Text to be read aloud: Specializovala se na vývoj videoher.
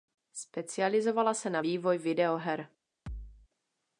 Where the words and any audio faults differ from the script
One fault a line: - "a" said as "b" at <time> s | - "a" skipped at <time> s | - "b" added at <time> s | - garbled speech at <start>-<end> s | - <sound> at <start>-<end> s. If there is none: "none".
- thud at 3.1-3.5 s